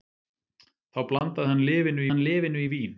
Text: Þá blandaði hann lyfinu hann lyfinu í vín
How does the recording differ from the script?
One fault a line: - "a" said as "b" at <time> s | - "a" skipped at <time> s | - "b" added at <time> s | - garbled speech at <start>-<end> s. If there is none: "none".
none